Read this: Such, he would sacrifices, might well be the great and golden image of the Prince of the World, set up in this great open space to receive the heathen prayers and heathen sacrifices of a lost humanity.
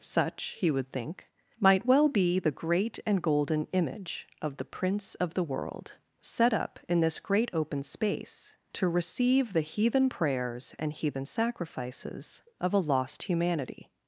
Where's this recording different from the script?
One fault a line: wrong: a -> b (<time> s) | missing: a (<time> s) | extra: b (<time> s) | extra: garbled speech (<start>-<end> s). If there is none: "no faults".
wrong: sacrifices -> think (0.9 s)